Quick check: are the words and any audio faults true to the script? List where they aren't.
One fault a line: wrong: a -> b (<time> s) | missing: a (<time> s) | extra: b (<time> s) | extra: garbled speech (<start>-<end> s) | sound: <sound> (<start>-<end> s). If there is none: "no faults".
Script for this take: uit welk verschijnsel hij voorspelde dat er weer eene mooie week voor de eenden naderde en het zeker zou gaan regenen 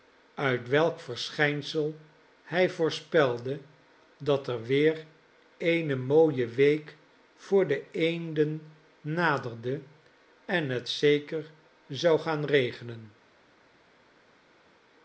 no faults